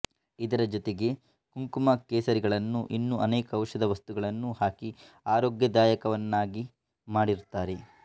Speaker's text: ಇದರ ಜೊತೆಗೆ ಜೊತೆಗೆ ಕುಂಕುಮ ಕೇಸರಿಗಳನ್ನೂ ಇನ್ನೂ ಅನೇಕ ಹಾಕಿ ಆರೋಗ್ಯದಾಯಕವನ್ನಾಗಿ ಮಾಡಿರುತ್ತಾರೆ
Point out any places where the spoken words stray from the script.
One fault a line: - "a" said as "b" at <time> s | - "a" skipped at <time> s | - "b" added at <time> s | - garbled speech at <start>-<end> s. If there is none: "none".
- "ಜೊತೆಗೆ" skipped at 1.1 s
- "ಔಷಧ ವಸ್ತುಗಳನ್ನೂ" added at 3.5 s